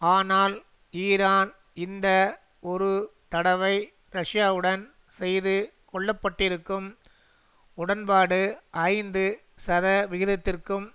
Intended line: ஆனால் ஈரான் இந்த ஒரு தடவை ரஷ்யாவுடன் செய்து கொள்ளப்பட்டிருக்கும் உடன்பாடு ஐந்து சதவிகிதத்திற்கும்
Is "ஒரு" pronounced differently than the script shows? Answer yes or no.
no